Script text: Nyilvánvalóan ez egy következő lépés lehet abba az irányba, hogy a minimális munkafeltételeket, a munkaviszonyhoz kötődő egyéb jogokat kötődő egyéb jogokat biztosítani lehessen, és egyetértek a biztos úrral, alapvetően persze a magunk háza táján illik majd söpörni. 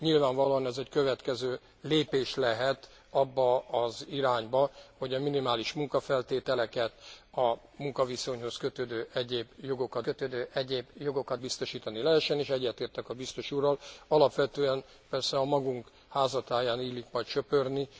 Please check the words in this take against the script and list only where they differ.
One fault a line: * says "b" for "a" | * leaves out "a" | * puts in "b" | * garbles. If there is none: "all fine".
all fine